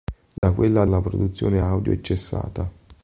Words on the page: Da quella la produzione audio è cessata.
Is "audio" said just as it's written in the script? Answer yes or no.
yes